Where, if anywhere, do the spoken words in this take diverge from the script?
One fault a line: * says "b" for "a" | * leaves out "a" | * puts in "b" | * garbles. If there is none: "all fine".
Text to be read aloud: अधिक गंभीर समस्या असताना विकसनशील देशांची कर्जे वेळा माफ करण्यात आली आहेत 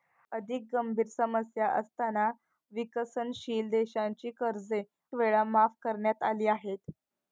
all fine